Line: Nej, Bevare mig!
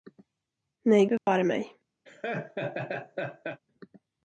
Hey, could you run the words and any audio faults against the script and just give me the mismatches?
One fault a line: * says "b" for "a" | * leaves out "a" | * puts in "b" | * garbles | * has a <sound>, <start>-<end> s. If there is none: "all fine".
* has a dropout, 1.2-1.3 s
* has a laugh, 2.1-3.6 s